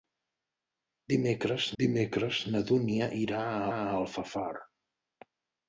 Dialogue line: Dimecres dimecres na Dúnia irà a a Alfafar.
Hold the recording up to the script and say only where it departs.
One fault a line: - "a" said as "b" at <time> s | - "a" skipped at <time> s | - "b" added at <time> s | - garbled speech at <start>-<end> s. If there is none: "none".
none